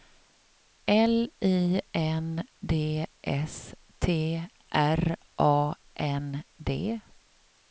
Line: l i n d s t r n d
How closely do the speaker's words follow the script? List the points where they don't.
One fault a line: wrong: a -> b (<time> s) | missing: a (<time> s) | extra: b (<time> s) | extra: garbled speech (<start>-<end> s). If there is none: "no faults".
extra: a (5.4 s)